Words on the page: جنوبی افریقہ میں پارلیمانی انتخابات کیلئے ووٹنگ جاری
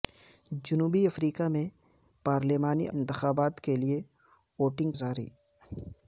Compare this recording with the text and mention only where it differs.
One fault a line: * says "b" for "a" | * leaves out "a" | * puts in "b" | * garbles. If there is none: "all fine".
all fine